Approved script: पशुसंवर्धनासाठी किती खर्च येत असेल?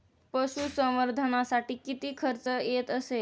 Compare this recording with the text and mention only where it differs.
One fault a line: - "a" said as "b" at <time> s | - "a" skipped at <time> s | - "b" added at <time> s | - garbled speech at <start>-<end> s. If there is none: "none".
none